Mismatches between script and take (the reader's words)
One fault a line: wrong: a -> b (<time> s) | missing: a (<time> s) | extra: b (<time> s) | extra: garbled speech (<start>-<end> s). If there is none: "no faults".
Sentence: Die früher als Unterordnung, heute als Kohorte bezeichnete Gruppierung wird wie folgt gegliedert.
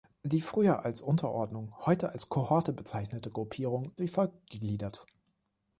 missing: wird (3.9 s)